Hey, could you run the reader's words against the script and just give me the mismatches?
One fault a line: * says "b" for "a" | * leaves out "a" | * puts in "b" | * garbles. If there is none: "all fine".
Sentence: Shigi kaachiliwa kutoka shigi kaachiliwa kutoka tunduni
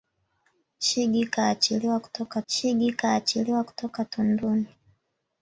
all fine